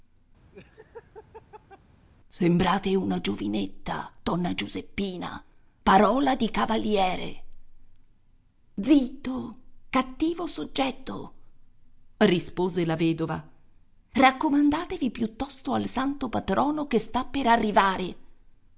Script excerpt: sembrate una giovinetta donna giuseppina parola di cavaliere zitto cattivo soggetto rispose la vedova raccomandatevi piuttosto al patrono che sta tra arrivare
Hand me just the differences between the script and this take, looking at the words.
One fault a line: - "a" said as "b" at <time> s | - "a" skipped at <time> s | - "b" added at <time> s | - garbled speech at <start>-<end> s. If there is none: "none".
- "santo" added at 15.8 s
- "tra" said as "per" at 17.2 s